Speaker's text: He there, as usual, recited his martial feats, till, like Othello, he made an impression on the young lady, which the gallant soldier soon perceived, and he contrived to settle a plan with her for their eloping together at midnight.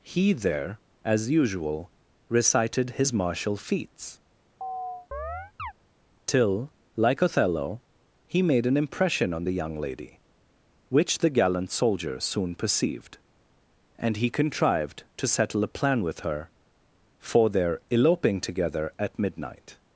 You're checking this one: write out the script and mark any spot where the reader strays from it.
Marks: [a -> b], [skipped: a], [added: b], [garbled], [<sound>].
He there, as usual, recited his martial feats, [chirp] till, like Othello, he made an impression on the young lady, which the gallant soldier soon perceived, and he contrived to settle a plan with her for their eloping together at midnight.